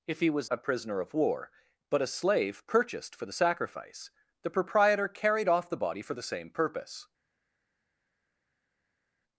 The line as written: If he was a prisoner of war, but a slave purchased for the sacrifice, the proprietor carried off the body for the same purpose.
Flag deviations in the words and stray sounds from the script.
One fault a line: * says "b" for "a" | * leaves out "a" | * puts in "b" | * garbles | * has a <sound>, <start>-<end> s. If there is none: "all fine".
all fine